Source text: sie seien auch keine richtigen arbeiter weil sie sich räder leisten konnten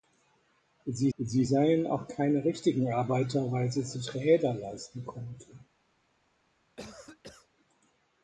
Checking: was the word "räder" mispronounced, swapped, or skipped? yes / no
no